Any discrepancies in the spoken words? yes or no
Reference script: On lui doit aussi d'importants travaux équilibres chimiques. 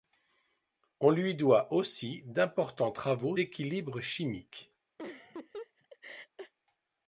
no